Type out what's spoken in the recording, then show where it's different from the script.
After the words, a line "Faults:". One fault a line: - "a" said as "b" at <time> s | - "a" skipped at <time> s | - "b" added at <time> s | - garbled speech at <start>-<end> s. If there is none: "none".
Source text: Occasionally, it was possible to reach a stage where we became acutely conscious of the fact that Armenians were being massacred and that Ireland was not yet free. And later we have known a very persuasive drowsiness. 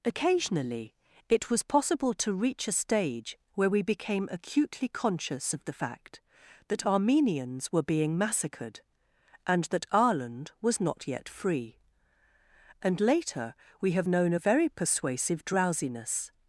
Occasionally, it was possible to reach a stage where we became acutely conscious of the fact that Armenians were being massacred and that Ireland was not yet free. And later we have known a very persuasive drowsiness.
Faults:
none